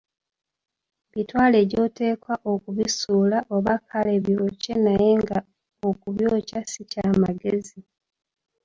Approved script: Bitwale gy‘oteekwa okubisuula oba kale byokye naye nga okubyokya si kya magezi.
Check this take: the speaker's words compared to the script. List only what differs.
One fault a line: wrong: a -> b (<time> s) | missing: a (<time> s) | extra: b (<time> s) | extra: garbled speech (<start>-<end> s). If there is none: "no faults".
no faults